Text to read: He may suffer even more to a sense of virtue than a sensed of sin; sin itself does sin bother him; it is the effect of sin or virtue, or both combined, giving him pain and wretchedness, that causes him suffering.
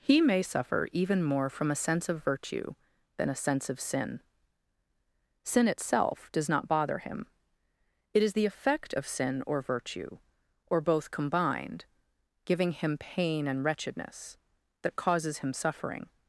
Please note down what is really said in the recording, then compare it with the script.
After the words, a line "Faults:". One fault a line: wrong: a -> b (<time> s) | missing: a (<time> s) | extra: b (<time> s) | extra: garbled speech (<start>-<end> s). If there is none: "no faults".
He may suffer even more from a sense of virtue than a sense of sin; sin itself does not bother him; it is the effect of sin or virtue, or both combined, giving him pain and wretchedness, that causes him suffering.
Faults:
wrong: to -> from (1.5 s)
wrong: sensed -> sense (3.4 s)
wrong: sin -> not (6.5 s)